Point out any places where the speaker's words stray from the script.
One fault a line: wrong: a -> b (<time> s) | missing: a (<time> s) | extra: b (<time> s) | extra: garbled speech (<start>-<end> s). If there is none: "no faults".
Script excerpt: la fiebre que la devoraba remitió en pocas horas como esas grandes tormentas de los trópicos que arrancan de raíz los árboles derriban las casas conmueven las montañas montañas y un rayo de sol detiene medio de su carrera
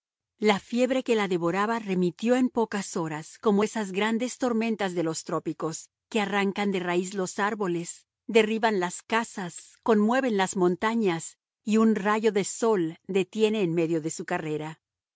missing: montañas (11.4 s)
extra: en (13.6 s)